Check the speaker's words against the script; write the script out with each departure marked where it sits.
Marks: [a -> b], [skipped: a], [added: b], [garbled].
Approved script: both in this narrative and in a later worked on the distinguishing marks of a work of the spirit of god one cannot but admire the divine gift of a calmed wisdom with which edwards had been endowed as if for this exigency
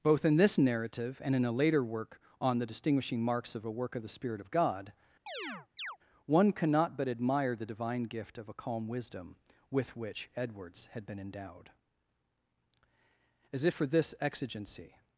both in this narrative and in a later [worked -> work] on the distinguishing marks of a work of the spirit of god one cannot but admire the divine gift of a [calmed -> calm] wisdom with which edwards had been endowed as if for this exigency